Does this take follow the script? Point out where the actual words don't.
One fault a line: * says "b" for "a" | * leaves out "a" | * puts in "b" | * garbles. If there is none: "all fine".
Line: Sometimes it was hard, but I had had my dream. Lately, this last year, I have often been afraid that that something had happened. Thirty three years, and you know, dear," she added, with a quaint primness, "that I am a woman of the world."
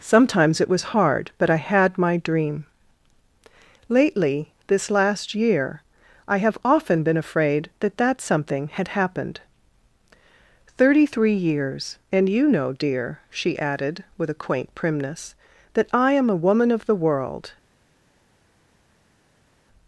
* leaves out "had"